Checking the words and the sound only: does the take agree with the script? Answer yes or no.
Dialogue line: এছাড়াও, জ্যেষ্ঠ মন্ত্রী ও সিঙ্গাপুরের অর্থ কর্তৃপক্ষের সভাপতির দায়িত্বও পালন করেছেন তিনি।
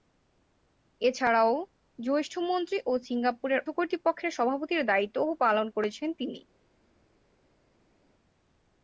no